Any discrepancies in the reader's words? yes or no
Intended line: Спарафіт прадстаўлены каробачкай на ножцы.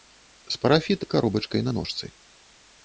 yes